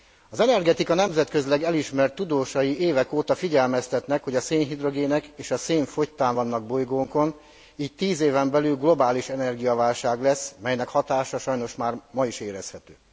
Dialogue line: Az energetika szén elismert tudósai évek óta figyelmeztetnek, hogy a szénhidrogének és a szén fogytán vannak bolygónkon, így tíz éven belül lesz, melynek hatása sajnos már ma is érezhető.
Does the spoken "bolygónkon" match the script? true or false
true